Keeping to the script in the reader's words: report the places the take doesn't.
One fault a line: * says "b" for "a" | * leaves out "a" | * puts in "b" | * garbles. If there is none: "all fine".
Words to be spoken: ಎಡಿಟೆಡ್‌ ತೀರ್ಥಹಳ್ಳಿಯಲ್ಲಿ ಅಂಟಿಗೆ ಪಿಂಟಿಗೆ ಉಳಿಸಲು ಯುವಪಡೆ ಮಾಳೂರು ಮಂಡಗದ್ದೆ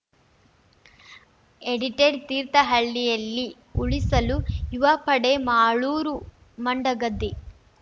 * leaves out "ಅಂಟಿಗೆ ಪಿಂಟಿಗೆ"